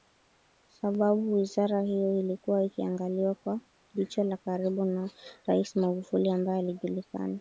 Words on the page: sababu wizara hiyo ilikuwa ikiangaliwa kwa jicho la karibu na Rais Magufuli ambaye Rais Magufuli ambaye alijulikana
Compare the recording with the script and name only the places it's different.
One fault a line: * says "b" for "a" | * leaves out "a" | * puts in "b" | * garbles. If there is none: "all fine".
* leaves out "Rais Magufuli ambaye"